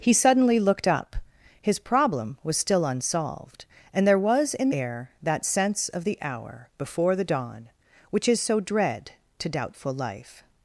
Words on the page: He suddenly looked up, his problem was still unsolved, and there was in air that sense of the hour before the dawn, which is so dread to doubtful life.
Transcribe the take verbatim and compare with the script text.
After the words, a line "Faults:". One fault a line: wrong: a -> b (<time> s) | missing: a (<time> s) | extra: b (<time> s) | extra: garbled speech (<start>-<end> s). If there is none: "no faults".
He suddenly looked up, his problem was still unsolved, and there was in air that sense of the hour before the dawn, which is so dread to doubtful life.
Faults:
no faults